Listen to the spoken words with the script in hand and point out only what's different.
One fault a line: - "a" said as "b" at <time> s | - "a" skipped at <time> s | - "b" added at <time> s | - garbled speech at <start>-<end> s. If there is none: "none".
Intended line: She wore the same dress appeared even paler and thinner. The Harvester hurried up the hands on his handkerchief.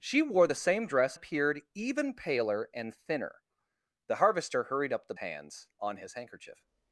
none